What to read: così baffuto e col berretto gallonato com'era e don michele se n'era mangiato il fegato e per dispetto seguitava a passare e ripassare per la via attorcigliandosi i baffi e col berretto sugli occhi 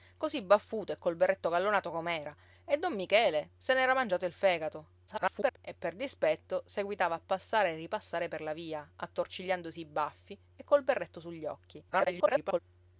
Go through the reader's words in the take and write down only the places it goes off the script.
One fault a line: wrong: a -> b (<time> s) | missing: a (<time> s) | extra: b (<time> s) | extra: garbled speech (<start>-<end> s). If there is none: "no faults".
extra: garbled speech (5.1-5.6 s)
extra: garbled speech (11.9-12.6 s)